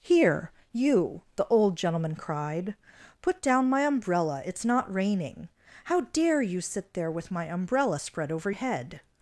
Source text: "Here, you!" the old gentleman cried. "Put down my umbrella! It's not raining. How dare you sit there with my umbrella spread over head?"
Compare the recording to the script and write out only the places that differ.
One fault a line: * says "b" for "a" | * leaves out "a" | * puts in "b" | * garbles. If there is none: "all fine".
all fine